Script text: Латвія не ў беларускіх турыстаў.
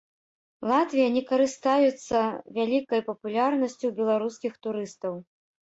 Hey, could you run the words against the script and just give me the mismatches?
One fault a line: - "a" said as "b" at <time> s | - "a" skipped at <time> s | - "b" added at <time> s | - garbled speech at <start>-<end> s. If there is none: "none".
- "карыстаюцца вялікай папулярнасцю" added at 1.3 s